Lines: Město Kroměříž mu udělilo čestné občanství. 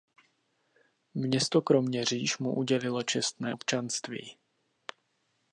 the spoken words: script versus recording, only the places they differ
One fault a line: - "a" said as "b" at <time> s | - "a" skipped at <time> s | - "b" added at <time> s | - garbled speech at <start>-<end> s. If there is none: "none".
none